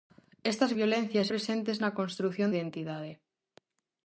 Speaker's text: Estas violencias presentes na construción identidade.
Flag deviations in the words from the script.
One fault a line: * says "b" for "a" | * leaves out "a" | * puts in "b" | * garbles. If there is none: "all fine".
all fine